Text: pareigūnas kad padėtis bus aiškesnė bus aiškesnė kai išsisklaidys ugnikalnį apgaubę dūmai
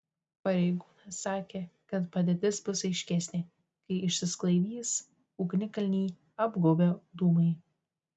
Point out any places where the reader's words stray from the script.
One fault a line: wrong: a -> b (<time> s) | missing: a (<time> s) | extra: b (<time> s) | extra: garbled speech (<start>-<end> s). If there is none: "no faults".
extra: sakė (1.2 s)
missing: bus aiškesnė (3.4 s)